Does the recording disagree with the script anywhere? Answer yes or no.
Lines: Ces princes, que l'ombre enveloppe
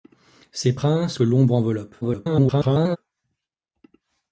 yes